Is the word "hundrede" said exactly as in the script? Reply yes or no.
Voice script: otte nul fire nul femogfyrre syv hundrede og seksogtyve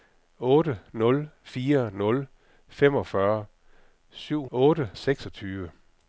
no